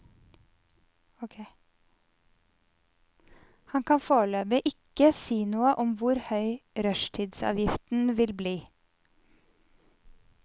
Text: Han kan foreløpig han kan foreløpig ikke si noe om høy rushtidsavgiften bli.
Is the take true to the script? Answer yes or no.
no